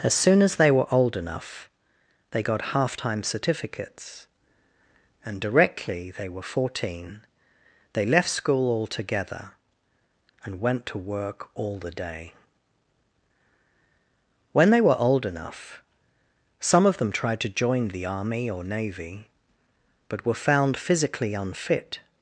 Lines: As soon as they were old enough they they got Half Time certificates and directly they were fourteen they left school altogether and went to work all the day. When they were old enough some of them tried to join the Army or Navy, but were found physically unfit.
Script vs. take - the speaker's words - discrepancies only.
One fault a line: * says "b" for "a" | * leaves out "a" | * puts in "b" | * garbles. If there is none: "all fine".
* leaves out "they"